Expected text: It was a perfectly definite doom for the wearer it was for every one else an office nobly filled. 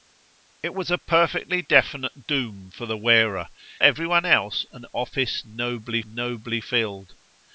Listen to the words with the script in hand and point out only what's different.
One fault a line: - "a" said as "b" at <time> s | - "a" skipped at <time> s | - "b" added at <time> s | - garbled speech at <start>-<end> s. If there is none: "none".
- "it was for" skipped at 3.5 s
- "nobly" added at 6.0 s